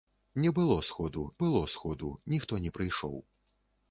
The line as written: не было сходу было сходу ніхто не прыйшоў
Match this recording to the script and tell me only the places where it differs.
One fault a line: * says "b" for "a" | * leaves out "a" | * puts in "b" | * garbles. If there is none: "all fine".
all fine